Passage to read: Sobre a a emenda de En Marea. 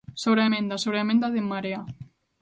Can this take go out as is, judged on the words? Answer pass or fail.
fail